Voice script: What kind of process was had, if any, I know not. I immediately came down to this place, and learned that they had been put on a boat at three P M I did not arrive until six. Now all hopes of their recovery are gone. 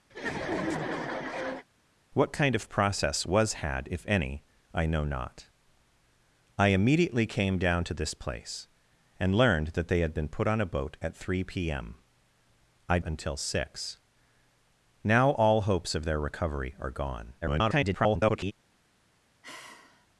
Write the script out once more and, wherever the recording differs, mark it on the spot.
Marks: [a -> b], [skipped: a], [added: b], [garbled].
What kind of process was had, if any, I know not. I immediately came down to this place, and learned that they had been put on a boat at three P M I [skipped: did not arrive] until six. Now all hopes of their recovery are gone. [garbled]